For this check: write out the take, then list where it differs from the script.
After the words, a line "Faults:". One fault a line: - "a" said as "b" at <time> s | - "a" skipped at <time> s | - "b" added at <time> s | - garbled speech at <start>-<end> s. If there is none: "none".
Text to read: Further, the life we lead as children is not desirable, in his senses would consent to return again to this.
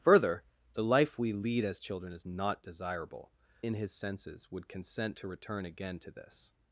Further, the life we lead as children is not desirable, in his senses would consent to return again to this.
Faults:
none